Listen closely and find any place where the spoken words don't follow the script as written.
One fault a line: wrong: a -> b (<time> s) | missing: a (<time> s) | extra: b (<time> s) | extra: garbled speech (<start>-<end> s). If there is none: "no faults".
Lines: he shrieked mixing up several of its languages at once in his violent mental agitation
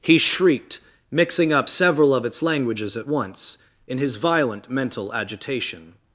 no faults